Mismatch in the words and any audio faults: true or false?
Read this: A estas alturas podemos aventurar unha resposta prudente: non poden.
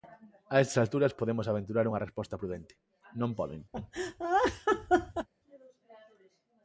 true